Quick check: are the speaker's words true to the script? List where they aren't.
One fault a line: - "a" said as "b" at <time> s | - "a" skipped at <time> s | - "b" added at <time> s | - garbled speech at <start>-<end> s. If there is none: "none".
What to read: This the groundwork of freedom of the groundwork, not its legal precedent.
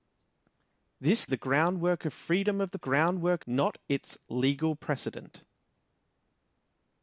none